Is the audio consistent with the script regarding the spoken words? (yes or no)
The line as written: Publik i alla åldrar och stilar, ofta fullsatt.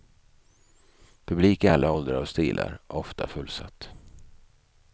yes